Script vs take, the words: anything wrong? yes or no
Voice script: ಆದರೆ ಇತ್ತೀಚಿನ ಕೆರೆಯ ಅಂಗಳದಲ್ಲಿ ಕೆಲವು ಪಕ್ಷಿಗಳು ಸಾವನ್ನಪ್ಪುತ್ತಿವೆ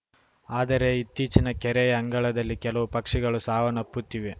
no